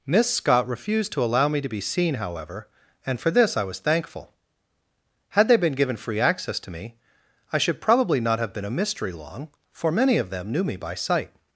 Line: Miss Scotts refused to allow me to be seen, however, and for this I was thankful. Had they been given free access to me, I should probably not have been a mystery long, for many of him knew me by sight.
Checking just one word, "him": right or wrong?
wrong